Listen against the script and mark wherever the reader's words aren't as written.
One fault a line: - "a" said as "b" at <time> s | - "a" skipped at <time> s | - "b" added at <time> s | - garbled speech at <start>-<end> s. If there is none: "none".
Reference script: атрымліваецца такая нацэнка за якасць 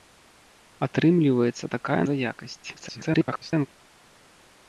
- "нацэнка" skipped at 2.0 s
- garbled speech at 2.7-3.7 s